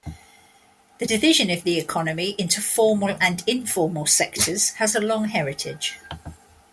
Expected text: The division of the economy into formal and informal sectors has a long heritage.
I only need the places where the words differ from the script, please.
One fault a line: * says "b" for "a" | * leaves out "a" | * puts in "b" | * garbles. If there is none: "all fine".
all fine